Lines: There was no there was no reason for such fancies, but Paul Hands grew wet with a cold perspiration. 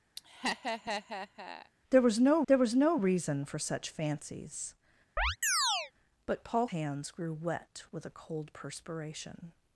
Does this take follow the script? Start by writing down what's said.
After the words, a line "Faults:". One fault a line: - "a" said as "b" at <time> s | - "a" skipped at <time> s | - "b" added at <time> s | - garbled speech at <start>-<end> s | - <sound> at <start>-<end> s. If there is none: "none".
There was no there was no reason for such fancies, but Paul Hands grew wet with a cold perspiration.
Faults:
- laugh at 0.2-1.7 s
- chirp at 5.2-5.9 s